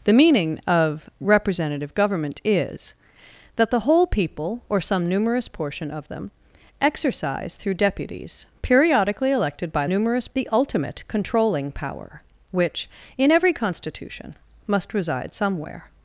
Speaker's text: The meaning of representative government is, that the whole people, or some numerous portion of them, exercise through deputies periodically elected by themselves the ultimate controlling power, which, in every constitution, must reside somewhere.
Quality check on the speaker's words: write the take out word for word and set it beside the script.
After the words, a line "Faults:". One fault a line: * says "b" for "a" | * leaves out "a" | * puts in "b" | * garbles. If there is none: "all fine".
The meaning of representative government is, that the whole people, or some numerous portion of them, exercise through deputies periodically elected by numerous the ultimate controlling power, which, in every constitution, must reside somewhere.
Faults:
* says "numerous" for "themselves"